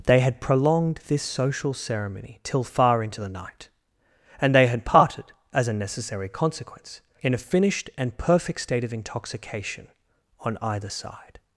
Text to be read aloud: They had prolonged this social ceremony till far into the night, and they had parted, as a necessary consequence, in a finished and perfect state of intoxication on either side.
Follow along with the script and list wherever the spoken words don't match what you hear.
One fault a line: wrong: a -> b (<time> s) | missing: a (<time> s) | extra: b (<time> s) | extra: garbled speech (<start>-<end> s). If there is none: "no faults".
no faults